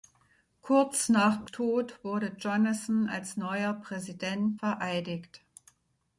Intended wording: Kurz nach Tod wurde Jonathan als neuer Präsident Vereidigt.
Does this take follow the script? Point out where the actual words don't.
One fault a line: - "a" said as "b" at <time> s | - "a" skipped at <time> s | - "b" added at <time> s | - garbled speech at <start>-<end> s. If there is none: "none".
none